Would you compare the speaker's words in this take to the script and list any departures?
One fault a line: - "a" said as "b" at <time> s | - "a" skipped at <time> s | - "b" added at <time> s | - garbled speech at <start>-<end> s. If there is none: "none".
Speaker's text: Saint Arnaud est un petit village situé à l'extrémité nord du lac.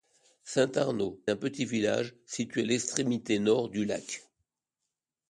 - "est" skipped at 1.2 s